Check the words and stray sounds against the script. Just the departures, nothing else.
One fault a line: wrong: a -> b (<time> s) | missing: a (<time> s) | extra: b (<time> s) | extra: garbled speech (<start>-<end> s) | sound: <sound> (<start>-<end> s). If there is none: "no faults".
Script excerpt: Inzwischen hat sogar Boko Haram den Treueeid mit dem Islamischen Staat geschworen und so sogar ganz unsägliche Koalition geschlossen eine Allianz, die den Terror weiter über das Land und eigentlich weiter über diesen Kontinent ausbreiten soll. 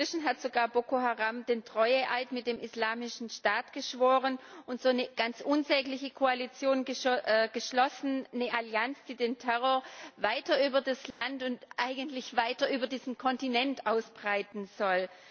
wrong: sogar -> eine (4.9 s)
sound: dropout (11.1-11.2 s)